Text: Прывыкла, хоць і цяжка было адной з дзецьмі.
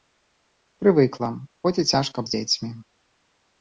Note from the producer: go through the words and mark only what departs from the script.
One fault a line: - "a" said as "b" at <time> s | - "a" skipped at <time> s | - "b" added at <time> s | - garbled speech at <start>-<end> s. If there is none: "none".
- "было адной" skipped at 2.2 s